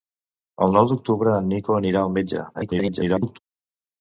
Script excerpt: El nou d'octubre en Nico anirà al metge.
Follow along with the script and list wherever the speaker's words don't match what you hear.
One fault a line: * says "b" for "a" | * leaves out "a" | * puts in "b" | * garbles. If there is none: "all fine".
* garbles